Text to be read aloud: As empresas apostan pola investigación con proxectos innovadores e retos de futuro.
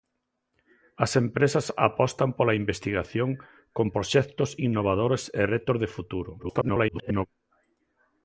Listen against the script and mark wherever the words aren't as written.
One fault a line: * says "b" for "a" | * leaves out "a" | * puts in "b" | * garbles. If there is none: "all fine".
* garbles